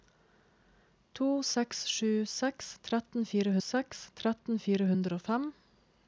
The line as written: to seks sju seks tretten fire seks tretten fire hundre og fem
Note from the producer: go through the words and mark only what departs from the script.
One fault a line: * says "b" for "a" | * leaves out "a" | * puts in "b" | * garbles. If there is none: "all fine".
all fine